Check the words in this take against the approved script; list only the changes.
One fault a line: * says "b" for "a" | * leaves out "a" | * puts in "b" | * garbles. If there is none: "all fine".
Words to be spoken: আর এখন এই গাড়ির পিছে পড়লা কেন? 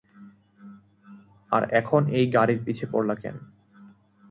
all fine